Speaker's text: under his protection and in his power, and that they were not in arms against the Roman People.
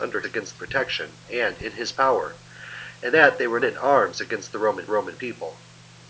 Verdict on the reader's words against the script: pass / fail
fail